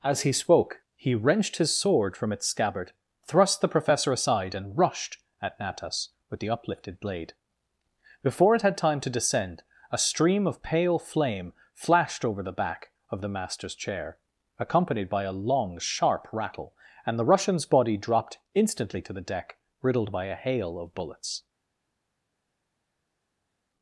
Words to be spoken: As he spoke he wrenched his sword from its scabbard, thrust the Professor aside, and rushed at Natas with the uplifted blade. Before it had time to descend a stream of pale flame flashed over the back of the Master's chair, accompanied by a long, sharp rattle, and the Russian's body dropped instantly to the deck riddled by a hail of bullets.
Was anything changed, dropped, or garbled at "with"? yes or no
no